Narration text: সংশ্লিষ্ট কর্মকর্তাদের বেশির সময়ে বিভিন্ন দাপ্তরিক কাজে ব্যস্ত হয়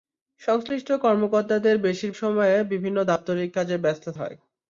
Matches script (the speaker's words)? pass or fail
pass